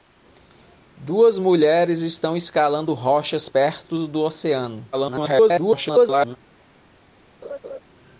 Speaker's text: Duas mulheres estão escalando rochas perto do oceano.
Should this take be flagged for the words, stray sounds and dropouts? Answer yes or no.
yes